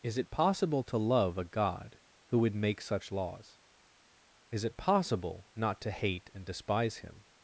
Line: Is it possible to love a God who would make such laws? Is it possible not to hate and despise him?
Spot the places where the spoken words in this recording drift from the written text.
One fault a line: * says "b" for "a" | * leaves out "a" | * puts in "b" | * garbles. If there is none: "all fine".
all fine